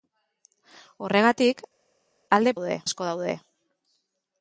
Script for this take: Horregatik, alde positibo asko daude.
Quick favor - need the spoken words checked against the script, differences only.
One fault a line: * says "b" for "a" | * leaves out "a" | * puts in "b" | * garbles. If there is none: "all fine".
* says "daude" for "positibo"